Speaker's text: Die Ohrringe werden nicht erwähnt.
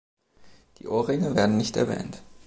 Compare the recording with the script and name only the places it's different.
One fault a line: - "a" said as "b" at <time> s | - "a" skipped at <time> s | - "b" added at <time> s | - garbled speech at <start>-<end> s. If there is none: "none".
none